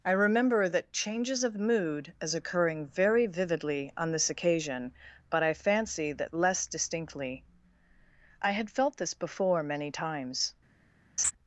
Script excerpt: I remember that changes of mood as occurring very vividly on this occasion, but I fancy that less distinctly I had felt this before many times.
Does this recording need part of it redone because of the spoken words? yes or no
no